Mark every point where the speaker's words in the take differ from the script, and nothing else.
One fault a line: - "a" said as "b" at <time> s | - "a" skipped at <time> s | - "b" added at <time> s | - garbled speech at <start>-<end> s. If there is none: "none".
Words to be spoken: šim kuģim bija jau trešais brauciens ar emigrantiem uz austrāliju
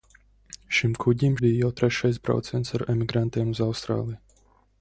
none